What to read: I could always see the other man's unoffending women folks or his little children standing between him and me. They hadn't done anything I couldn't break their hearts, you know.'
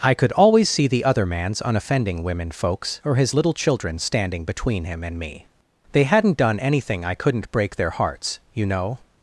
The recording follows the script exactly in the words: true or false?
true